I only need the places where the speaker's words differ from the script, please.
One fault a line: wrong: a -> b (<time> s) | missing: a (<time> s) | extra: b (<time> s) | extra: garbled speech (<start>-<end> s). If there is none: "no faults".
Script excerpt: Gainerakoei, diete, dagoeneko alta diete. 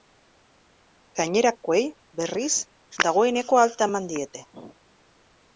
wrong: diete -> berriz (2.2 s)
extra: eman (3.9 s)